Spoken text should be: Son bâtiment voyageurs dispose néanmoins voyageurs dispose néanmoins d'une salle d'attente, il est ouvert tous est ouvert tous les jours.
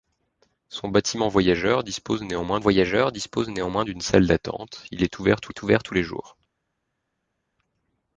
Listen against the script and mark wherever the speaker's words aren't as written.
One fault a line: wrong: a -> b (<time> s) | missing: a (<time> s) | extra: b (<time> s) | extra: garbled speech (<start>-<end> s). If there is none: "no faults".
no faults